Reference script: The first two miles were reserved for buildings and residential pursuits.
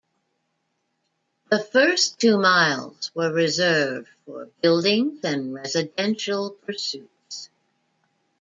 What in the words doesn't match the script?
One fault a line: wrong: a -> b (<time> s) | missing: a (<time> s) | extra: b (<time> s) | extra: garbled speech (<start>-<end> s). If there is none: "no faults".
no faults